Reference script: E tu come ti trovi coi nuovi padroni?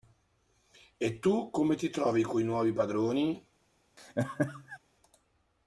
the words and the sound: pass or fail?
fail